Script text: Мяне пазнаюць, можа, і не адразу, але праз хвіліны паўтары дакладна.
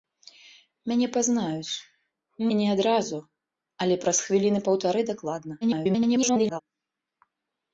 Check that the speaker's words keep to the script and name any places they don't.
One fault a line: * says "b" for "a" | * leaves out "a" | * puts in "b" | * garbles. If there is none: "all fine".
* leaves out "можа"
* garbles